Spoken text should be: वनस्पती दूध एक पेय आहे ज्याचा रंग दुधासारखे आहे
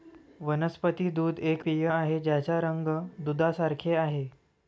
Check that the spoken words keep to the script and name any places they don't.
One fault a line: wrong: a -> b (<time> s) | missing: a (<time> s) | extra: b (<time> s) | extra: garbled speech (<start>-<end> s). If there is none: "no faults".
no faults